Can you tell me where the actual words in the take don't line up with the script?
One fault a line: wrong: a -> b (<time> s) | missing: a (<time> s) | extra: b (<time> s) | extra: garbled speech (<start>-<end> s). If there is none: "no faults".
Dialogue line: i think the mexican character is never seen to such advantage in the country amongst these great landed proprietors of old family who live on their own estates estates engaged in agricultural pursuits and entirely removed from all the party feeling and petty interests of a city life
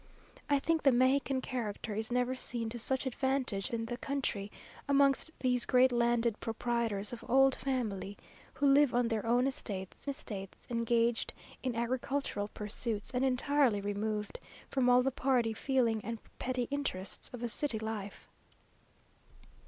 no faults